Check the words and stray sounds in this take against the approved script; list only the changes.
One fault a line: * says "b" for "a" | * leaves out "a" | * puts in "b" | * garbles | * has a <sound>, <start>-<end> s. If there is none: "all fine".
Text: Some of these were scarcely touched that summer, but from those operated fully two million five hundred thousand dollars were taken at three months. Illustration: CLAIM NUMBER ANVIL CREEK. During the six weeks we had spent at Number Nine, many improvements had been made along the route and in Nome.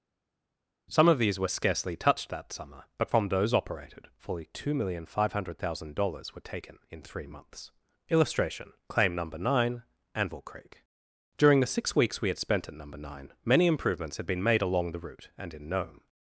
* says "in" for "at"
* puts in "NINE"